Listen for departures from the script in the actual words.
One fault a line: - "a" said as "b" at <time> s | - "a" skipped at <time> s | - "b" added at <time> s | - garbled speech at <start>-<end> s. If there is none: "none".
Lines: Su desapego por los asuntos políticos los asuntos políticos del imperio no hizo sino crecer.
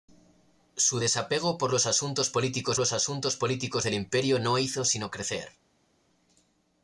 none